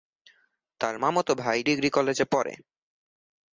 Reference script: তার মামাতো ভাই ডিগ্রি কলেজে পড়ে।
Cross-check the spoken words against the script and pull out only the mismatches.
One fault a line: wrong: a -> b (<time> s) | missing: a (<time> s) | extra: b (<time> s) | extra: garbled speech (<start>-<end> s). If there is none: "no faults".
no faults